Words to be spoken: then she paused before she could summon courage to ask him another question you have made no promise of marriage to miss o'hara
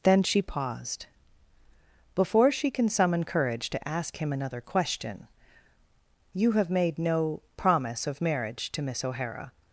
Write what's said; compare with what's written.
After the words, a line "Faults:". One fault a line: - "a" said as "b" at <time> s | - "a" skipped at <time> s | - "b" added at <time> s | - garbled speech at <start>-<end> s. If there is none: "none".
then she paused before she can summon courage to ask him another question you have made no promise of marriage to miss o'hara
Faults:
- "could" said as "can" at 2.7 s